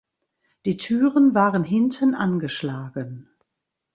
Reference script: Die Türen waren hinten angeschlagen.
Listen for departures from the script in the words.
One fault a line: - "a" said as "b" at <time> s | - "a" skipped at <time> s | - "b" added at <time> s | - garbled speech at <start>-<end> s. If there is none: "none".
none